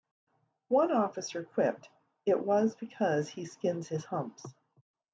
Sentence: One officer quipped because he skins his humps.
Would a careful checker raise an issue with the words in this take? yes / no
yes